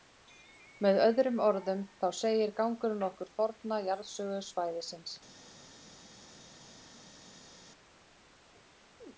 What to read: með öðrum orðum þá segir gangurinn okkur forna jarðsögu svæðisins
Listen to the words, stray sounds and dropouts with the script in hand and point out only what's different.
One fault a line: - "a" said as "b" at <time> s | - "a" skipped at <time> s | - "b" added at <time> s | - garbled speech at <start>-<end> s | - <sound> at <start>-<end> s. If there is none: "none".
none